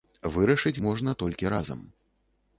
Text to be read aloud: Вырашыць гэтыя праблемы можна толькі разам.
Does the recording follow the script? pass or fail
fail